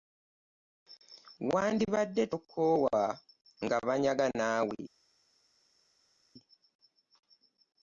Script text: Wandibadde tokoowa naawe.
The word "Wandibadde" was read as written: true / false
true